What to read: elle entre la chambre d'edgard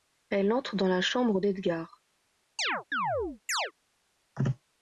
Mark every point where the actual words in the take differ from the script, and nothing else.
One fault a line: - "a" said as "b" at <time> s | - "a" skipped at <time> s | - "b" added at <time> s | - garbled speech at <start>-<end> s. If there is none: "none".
- "dans" added at 0.8 s